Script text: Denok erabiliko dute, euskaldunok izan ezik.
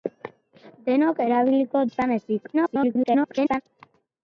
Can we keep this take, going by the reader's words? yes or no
no